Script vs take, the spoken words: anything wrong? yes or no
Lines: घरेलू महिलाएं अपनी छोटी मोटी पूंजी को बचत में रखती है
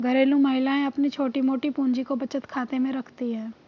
yes